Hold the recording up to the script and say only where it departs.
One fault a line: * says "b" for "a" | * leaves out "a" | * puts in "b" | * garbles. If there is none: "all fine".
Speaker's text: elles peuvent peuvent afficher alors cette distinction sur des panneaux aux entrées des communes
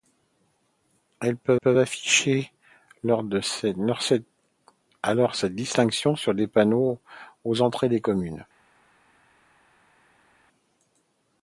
all fine